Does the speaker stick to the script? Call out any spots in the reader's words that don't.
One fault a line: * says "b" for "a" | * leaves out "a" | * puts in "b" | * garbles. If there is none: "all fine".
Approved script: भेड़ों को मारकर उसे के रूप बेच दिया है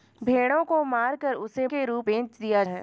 all fine